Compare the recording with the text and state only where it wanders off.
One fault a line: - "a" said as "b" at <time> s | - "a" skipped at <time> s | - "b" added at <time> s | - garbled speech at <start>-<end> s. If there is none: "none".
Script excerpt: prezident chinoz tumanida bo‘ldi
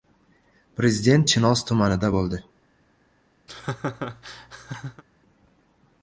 none